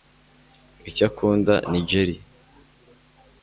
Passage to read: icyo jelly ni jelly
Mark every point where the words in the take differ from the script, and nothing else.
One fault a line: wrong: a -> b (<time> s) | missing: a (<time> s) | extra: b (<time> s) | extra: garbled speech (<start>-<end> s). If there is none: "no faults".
wrong: jelly -> akunda (1.1 s)